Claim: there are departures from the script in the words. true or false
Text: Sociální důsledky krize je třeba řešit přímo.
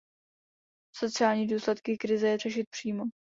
true